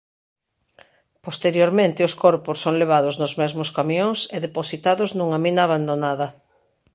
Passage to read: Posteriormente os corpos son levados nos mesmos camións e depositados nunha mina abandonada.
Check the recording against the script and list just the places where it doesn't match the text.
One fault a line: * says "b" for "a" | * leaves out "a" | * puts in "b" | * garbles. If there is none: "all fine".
all fine